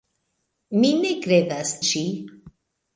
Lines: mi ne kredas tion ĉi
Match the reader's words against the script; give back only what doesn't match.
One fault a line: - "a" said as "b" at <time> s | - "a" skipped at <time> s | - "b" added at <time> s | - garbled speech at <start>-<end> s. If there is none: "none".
- "tion" skipped at 1.8 s